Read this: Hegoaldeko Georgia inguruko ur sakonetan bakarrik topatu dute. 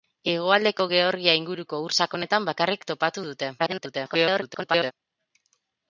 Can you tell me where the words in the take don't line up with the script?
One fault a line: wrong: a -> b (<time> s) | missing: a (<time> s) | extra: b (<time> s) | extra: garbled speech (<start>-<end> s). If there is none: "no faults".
extra: garbled speech (3.6-4.9 s)